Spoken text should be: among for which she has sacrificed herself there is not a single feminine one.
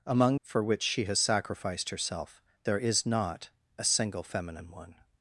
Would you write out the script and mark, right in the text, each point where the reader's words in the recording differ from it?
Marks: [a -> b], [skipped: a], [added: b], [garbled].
among for which she has sacrificed herself there is not a single feminine one.